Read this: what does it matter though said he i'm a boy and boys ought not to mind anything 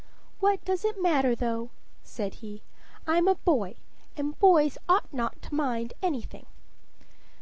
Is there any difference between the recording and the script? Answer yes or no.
no